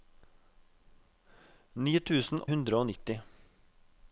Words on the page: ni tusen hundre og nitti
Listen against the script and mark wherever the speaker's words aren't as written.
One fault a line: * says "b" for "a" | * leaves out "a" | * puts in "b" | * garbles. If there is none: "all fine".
all fine